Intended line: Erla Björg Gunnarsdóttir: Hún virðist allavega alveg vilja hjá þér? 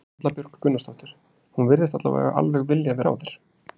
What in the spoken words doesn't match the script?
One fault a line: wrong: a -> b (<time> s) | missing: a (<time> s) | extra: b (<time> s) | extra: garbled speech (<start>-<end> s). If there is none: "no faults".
no faults